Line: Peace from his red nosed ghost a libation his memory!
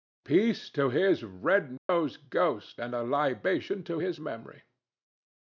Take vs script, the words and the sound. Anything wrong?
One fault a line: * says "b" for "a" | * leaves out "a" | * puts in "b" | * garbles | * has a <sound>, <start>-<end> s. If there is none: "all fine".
* says "to" for "from"
* has a dropout, 1.8-1.9 s
* puts in "and"
* puts in "to"